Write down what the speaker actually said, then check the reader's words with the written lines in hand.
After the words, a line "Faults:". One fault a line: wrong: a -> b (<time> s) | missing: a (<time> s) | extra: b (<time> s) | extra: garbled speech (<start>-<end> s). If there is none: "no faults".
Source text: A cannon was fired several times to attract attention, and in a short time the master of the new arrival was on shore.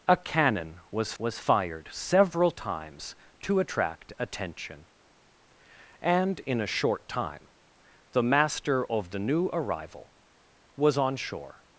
A cannon was was fired several times to attract attention, and in a short time the master of the new arrival was on shore.
Faults:
extra: was (1.2 s)